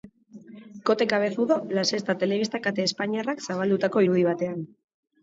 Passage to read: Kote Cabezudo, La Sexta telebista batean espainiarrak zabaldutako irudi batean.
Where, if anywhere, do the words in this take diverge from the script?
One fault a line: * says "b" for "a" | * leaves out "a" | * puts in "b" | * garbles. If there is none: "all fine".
* says "kate" for "batean"